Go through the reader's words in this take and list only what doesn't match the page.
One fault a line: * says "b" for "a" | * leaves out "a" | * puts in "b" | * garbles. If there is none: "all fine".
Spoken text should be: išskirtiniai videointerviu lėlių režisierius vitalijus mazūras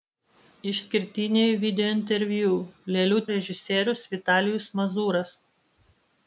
all fine